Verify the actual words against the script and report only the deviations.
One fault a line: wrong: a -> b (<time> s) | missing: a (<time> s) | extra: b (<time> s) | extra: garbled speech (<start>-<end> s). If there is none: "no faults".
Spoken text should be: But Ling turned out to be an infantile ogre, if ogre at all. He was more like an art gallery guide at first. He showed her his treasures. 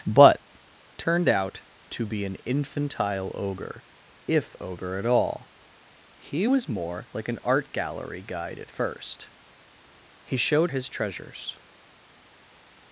missing: Ling (0.4 s)
missing: her (10.7 s)